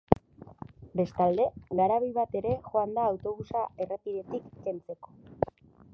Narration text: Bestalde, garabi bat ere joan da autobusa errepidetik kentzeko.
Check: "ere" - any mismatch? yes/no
no